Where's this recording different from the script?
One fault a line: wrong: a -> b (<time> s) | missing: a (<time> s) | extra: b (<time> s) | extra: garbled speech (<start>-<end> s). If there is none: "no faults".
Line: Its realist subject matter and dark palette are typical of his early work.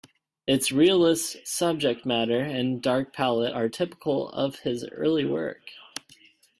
no faults